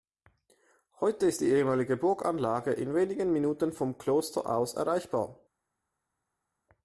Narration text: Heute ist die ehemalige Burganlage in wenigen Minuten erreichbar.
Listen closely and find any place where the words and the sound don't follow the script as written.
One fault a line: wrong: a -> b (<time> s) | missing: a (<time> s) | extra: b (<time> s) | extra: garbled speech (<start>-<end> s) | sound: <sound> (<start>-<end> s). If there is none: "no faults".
extra: vom Kloster aus (3.7 s)